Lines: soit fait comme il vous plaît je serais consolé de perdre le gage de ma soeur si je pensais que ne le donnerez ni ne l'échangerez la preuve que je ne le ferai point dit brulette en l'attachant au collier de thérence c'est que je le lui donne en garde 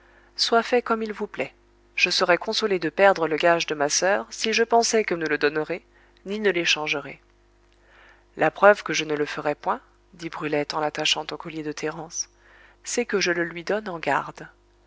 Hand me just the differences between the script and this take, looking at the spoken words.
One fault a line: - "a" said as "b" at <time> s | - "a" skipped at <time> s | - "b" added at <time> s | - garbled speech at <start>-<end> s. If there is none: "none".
none